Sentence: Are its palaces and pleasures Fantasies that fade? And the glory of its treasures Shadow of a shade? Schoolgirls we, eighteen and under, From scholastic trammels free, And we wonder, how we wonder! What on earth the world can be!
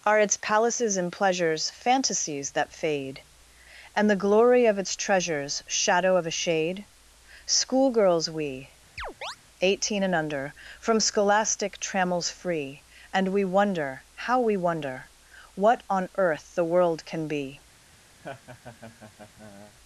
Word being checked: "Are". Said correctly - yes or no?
yes